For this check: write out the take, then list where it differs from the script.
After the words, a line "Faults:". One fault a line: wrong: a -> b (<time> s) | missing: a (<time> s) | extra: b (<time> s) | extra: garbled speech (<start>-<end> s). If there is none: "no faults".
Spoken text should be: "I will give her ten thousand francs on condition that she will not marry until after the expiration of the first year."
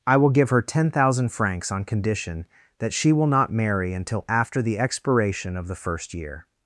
"I will give her ten thousand francs on condition that she will not marry until after the expiration of the first year."
Faults:
no faults